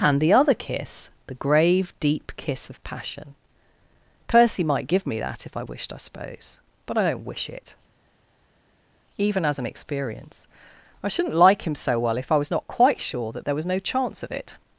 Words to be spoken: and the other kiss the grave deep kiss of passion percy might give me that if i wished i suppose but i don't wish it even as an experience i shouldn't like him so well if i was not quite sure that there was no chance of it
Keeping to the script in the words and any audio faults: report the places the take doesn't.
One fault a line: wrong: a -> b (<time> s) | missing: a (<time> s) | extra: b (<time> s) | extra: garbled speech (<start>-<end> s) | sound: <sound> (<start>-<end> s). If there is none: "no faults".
no faults